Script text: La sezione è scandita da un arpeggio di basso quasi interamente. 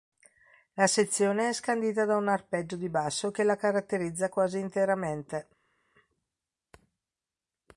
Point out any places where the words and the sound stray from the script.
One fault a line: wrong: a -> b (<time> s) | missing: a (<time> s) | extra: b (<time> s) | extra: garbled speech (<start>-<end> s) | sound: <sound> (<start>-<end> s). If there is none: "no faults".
extra: che la caratterizza (3.3 s)